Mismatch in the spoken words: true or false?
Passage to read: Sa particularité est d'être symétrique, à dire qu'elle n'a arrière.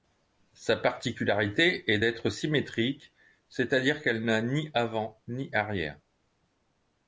true